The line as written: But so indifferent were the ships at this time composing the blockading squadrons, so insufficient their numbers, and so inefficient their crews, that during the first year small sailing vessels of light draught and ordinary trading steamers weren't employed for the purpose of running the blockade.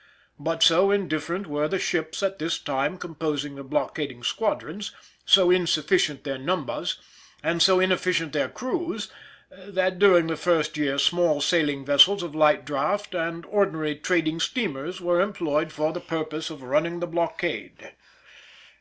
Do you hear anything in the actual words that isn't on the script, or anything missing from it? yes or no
yes